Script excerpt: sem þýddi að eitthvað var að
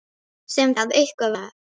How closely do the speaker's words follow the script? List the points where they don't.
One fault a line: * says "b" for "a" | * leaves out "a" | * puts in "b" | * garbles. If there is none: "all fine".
* leaves out "þýddi"
* leaves out "var"